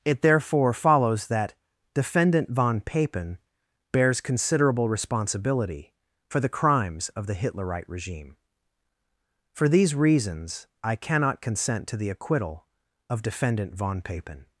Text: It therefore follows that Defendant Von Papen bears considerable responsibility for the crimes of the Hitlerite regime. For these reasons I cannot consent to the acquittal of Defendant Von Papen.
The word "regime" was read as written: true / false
true